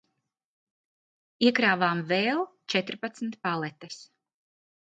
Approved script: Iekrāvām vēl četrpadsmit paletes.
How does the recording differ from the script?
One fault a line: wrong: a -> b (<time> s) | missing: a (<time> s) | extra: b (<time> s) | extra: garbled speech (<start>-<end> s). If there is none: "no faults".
no faults